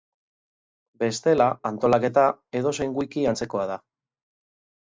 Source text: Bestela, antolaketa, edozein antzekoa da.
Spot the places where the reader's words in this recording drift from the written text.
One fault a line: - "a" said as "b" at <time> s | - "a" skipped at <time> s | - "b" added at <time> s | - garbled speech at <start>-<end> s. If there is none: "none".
- "wiki" added at 3.0 s